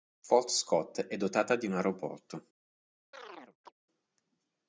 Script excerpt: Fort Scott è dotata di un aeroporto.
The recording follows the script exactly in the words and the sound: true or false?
false